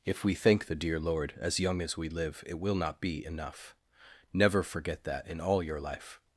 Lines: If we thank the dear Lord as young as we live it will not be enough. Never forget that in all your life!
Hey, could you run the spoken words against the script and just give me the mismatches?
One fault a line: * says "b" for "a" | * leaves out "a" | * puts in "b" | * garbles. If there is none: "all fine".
all fine